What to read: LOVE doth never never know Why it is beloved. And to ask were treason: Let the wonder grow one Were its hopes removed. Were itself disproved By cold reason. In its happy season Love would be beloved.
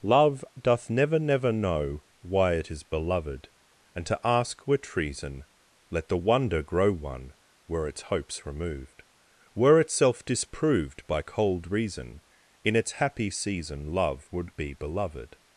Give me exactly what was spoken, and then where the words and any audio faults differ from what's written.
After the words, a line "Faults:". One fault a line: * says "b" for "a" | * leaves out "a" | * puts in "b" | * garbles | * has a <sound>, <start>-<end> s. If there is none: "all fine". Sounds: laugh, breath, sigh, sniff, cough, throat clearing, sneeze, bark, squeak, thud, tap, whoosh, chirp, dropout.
LOVE doth never never know Why it is beloved. And to ask were treason: Let the wonder grow one Were its hopes removed. Were itself disproved By cold reason. In its happy season Love would be beloved.
Faults:
all fine